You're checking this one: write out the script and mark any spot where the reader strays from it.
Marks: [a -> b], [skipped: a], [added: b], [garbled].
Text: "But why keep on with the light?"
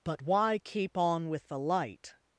"But why keep on with the light?"